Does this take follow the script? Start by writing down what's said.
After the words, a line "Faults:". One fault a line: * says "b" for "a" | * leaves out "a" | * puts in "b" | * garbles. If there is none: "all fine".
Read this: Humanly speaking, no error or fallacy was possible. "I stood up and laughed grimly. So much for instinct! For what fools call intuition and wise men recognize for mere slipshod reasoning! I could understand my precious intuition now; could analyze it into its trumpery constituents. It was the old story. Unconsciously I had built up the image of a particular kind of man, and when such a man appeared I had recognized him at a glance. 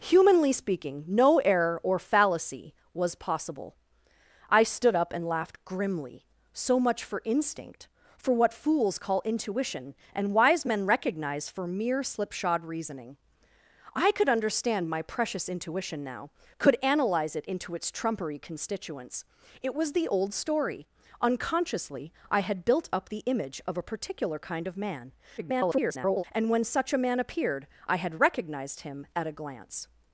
Humanly speaking, no error or fallacy was possible. "I stood up and laughed grimly. So much for instinct! For what fools call intuition and wise men recognize for mere slipshod reasoning! I could understand my precious intuition now; could analyze it into its trumpery constituents. It was the old story. Unconsciously I had built up the image of a particular kind of man, [garbled] and when such a man appeared I had recognized him at a glance.
Faults:
* garbles